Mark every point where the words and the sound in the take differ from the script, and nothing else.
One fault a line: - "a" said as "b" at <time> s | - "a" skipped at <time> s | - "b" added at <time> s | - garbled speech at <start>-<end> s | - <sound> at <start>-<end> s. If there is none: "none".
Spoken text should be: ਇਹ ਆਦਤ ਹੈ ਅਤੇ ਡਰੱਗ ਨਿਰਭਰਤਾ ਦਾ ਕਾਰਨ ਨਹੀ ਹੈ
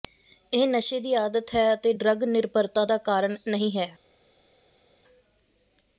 - "ਨਸ਼ੇ ਦੀ" added at 0.7 s